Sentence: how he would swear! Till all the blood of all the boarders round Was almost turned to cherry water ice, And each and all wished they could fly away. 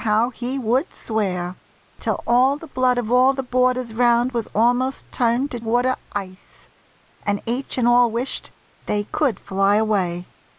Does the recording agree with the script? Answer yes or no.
no